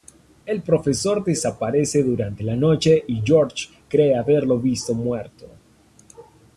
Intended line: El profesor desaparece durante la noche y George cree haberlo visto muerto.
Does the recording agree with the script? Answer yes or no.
yes